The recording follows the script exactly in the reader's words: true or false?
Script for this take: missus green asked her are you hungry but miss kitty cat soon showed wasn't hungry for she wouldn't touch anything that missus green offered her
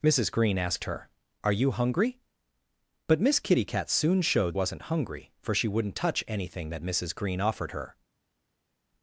true